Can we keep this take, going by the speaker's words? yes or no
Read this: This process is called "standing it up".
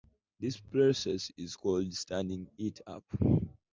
yes